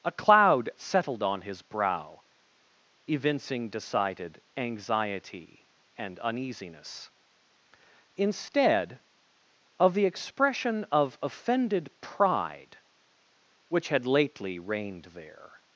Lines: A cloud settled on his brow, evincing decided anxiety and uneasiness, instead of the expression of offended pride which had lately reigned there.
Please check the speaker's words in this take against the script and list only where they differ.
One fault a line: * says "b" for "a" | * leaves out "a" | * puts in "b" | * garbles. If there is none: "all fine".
all fine